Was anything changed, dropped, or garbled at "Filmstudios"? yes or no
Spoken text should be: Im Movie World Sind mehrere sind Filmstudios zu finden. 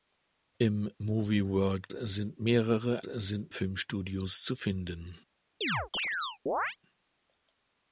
no